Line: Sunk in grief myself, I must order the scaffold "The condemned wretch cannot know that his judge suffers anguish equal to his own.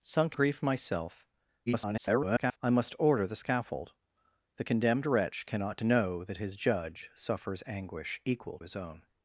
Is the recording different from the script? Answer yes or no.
yes